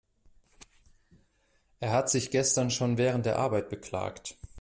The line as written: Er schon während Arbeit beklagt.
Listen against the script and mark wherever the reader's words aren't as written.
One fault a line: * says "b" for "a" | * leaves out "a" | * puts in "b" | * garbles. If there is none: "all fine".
* puts in "hat sich gestern"
* puts in "der"